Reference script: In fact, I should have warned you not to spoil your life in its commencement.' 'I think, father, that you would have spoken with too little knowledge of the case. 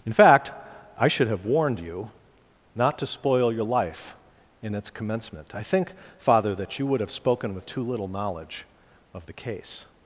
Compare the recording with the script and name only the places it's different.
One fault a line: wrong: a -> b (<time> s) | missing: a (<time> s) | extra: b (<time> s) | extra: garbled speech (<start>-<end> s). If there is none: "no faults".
no faults